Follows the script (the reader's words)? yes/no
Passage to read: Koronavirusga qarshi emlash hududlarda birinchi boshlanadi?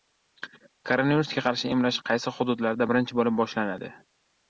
no